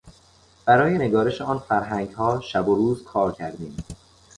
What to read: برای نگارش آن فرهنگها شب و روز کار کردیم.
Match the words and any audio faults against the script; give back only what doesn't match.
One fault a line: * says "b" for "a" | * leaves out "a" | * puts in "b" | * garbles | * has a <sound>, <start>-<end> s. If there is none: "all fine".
all fine